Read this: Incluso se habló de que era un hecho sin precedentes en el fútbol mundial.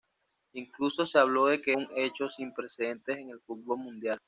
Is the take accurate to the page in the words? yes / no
no